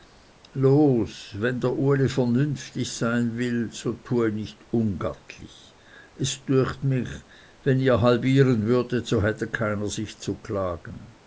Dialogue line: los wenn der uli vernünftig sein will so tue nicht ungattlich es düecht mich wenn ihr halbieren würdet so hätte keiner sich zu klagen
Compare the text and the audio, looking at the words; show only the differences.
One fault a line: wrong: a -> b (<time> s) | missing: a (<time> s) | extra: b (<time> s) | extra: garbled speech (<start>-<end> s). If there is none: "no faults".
no faults